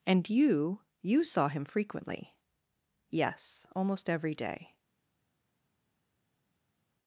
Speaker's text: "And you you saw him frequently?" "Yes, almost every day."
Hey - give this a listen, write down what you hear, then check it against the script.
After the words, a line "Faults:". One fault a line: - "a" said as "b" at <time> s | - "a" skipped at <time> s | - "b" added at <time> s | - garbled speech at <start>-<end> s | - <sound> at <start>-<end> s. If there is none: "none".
"And you you saw him frequently?" "Yes, almost every day."
Faults:
none